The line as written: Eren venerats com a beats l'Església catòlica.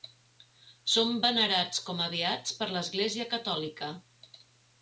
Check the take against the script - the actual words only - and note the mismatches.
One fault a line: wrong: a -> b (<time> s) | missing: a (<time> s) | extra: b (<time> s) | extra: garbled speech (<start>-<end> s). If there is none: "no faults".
wrong: Eren -> Són (0.9 s)
extra: per (2.6 s)